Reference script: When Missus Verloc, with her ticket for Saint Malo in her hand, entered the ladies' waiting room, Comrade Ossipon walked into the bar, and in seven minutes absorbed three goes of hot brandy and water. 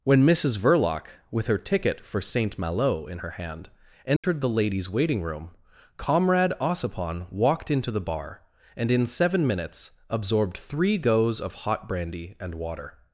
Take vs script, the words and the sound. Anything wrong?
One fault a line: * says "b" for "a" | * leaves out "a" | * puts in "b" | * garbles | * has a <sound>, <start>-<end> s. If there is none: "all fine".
* has a dropout, 4.2-4.2 s